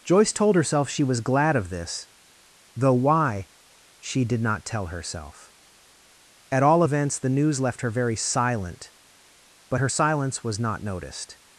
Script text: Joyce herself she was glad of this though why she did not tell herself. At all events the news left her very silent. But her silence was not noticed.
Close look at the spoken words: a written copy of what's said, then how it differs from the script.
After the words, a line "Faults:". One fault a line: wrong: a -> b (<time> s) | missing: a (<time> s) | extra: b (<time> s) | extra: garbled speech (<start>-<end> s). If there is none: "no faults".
Joyce told herself she was glad of this though why she did not tell herself. At all events the news left her very silent. But her silence was not noticed.
Faults:
extra: told (0.3 s)